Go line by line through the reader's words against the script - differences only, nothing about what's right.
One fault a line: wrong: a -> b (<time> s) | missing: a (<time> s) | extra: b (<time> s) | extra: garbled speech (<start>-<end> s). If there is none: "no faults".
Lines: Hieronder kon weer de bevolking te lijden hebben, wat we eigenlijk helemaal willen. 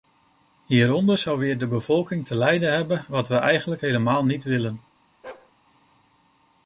wrong: kon -> zou (1.2 s)
extra: niet (4.2 s)